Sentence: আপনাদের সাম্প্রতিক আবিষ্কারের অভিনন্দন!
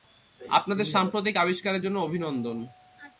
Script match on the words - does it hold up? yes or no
no